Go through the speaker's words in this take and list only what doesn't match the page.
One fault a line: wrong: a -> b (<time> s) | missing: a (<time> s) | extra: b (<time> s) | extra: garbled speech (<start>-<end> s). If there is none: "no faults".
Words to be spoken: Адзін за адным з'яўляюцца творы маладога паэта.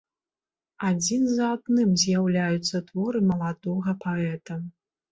no faults